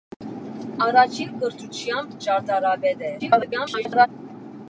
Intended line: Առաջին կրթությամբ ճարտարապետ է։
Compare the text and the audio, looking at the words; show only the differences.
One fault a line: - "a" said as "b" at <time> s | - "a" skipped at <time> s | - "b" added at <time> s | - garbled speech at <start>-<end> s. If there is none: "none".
- garbled speech at 3.2-4.1 s